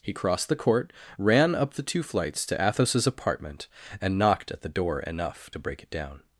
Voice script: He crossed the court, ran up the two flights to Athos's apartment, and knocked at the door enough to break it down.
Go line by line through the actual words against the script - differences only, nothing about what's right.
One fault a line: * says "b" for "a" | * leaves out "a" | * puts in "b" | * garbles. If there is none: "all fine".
all fine